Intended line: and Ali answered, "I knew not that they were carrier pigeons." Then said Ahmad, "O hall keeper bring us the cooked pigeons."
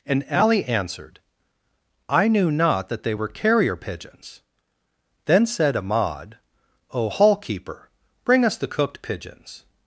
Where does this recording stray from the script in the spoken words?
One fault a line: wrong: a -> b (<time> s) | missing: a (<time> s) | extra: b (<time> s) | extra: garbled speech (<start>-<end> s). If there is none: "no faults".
no faults